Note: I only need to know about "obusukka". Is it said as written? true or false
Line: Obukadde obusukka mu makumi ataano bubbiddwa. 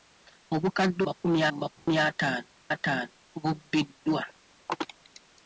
false